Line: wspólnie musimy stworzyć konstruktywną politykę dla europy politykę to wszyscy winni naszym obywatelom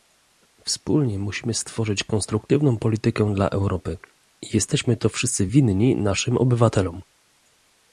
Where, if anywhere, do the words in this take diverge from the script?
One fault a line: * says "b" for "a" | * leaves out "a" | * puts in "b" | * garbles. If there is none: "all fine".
* says "jesteśmy" for "politykę"